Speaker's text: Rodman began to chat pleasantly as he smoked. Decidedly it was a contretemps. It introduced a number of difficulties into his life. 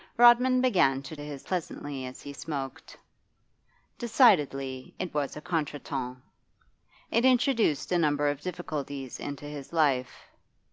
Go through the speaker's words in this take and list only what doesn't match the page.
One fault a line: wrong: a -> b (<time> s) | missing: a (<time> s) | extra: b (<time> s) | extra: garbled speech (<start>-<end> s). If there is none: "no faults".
wrong: chat -> his (1.2 s)